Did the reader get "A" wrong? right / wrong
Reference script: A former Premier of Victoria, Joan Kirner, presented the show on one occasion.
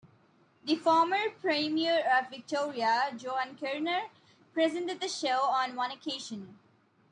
wrong